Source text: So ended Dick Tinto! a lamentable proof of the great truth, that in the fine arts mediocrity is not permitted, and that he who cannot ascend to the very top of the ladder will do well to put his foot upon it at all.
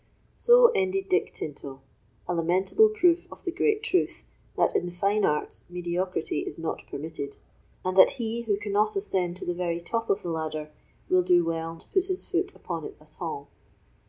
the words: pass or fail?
pass